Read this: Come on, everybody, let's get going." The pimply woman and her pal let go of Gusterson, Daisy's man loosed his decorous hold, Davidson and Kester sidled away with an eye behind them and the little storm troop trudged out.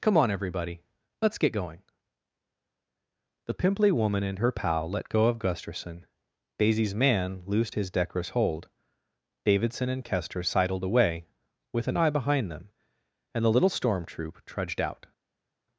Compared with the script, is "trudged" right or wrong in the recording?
right